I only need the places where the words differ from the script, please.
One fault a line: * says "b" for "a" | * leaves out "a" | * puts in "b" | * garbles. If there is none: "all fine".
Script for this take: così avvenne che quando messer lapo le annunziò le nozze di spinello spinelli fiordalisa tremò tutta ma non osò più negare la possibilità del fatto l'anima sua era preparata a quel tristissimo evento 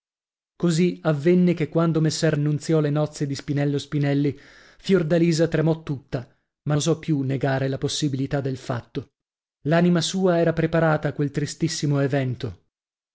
* leaves out "lapo le"
* leaves out "non"